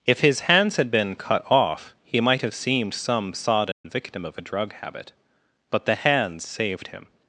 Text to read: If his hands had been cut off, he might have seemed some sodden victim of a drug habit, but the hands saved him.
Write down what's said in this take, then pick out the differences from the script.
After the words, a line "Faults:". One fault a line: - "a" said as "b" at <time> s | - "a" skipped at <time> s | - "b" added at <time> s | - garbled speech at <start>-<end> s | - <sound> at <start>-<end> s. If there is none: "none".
If his hands had been cut off, he might have seemed some sodden victim of a drug habit, but the hands saved him.
Faults:
- dropout at 3.7-3.8 s